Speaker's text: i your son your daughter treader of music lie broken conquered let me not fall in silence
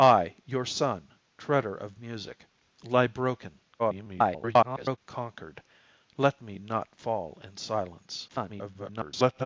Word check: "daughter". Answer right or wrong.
wrong